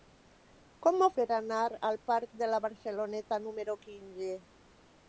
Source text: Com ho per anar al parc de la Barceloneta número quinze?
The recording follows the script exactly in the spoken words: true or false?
true